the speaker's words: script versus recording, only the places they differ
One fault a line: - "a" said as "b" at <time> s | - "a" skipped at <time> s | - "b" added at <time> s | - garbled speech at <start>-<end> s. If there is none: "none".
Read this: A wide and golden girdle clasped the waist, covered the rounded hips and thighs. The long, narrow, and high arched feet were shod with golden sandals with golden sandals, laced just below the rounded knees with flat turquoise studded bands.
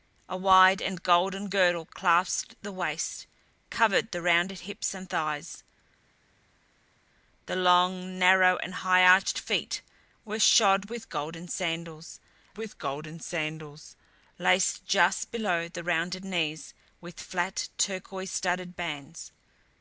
none